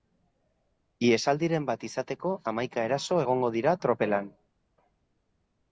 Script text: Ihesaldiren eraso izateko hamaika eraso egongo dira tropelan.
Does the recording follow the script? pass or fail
fail